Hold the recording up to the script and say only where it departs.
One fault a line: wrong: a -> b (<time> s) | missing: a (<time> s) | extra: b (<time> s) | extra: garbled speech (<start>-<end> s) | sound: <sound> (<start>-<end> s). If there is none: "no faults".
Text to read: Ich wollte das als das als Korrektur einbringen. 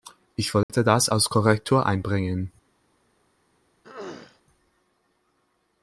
sound: dropout (0.6-0.7 s)
missing: das als (1.3 s)
sound: throat clearing (3.8-4.4 s)